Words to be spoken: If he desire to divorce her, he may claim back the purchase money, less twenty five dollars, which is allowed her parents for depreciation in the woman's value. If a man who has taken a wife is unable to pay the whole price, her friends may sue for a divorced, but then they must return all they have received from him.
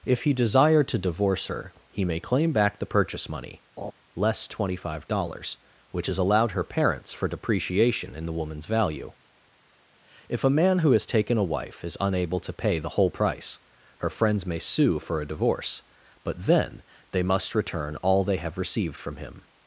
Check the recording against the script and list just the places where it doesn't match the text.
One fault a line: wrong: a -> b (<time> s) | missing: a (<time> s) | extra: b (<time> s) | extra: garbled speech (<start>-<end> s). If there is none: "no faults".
wrong: divorced -> divorce (15.3 s)